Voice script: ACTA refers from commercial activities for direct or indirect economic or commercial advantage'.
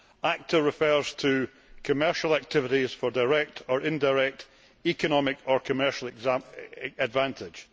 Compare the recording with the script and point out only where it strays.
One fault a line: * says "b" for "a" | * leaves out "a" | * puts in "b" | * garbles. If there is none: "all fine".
* says "to" for "from"